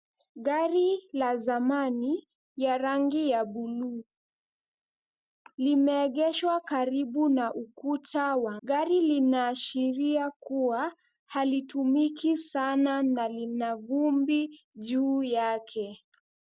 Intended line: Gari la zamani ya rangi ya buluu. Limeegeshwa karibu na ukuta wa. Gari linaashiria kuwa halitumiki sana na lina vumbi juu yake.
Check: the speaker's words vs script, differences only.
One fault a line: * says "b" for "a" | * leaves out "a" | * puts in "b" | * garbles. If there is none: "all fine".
all fine